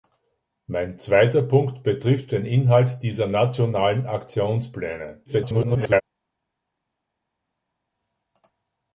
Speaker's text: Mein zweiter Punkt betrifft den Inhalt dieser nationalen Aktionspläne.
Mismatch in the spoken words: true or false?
true